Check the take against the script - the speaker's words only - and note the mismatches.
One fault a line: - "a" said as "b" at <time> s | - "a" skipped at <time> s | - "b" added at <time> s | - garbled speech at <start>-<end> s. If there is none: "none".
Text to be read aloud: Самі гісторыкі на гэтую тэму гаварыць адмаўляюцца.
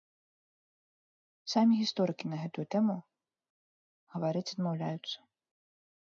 none